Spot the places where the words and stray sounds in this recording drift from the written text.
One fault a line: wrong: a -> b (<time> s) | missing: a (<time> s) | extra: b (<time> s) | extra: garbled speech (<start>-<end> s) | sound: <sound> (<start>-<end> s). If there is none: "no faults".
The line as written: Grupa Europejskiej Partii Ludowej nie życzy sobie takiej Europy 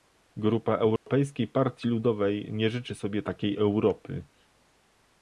sound: dropout (1.0-1.1 s)